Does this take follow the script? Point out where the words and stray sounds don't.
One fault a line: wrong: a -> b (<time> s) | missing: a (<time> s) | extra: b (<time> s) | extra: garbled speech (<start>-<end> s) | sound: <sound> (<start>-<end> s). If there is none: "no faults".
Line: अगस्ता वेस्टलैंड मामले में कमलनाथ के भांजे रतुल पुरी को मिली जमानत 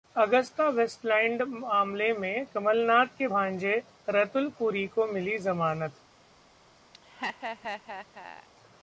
sound: laugh (6.9-8.5 s)